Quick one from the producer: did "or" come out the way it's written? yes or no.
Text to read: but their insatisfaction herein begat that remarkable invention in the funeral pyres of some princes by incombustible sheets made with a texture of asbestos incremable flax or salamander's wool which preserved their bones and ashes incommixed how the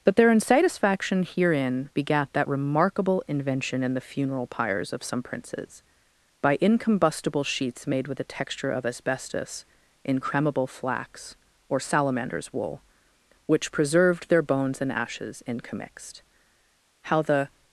yes